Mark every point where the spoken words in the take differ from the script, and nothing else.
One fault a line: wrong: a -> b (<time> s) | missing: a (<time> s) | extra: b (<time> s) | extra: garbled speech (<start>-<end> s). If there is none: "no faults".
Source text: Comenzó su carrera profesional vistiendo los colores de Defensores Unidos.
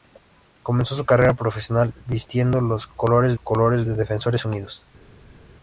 extra: colores (3.3 s)